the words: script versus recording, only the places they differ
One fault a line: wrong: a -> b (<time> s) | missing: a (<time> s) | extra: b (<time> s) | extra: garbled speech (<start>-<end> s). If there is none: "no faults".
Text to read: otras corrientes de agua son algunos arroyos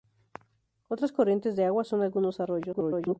extra: garbled speech (2.7-3.2 s)